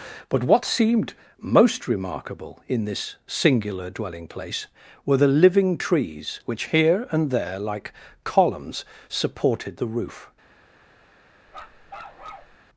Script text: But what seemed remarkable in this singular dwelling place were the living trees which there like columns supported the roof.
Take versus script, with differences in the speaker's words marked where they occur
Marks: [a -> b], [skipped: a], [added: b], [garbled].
But what seemed [added: most] remarkable in this singular dwelling place were the living trees which [added: here and] there like columns supported the roof.